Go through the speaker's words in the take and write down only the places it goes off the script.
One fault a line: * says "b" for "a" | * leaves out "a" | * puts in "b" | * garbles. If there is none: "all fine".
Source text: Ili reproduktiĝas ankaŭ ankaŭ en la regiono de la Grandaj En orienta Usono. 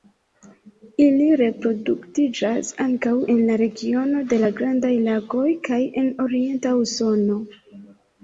* leaves out "ankaŭ"
* puts in "Lagoj kaj"